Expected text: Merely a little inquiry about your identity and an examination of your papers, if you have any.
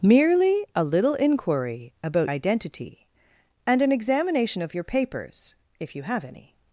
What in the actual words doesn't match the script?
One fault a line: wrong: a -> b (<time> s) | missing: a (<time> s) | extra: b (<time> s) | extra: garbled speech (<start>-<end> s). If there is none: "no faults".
missing: your (2.3 s)